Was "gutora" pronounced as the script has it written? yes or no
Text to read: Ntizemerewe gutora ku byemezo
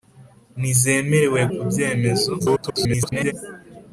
no